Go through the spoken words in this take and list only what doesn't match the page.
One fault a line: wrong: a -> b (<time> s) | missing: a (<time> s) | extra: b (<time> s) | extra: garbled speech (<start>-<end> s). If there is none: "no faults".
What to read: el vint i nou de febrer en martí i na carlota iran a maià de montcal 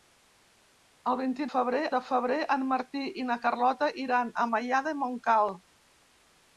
wrong: nou -> febrer (1.5 s)